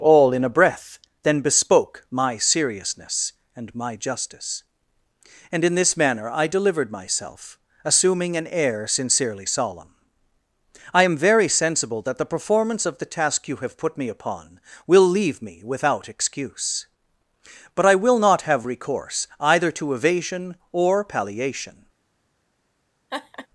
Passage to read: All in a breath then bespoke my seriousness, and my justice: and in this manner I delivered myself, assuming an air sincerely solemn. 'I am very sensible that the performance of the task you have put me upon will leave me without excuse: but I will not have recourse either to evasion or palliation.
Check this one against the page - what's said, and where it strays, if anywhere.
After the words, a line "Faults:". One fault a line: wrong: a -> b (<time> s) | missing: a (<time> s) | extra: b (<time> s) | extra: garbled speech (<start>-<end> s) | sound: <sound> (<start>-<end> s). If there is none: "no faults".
All in a breath then bespoke my seriousness, and my justice: and in this manner I delivered myself, assuming an air sincerely solemn. 'I am very sensible that the performance of the task you have put me upon will leave me without excuse: but I will not have recourse either to evasion or palliation.
Faults:
sound: laugh (23.1-23.5 s)